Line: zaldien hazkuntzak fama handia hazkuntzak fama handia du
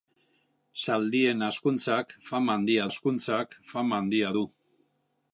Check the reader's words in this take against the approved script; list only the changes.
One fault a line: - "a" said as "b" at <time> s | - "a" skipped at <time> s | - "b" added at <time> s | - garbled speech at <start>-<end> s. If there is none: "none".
none